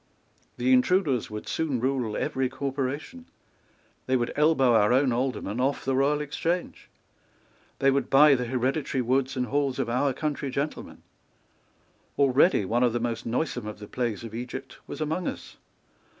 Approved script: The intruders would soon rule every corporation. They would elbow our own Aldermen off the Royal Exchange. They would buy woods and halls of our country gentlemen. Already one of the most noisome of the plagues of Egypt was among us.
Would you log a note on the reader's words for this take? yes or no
yes